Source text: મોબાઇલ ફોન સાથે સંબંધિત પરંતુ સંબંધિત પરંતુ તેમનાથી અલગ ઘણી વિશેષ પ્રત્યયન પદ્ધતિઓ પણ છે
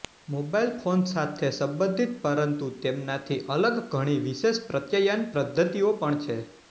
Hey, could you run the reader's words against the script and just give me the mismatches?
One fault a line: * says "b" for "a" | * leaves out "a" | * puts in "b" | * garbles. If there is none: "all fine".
* leaves out "સંબંધિત પરંતુ"